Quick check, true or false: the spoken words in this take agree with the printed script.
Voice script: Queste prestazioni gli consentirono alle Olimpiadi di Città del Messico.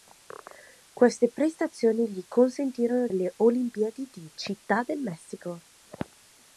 true